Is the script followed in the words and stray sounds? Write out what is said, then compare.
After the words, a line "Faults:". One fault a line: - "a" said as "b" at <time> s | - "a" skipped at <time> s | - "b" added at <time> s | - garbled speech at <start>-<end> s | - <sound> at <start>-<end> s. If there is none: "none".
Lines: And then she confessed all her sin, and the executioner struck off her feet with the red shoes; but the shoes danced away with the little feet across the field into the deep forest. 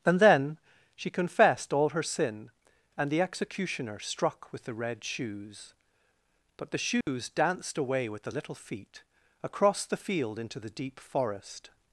And then she confessed all her sin, and the executioner struck with the red shoes; but the shoes danced away with the little feet across the field into the deep forest.
Faults:
- "off her feet" skipped at 4.5 s
- dropout at 7.0-7.1 s